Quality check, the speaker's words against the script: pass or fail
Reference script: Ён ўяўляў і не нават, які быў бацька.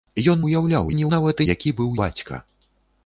pass